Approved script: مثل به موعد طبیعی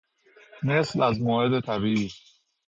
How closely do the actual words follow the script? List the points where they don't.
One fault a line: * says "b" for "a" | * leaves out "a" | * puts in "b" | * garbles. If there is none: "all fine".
* says "از" for "به"